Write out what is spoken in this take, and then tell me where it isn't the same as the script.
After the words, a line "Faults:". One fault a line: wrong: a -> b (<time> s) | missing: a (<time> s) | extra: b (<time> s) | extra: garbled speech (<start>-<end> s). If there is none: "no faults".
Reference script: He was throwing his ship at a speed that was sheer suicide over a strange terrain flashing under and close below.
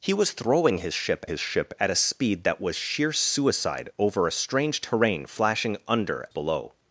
He was throwing his ship his ship at a speed that was sheer suicide over a strange terrain flashing under below.
Faults:
extra: his ship (1.2 s)
missing: and close (6.3 s)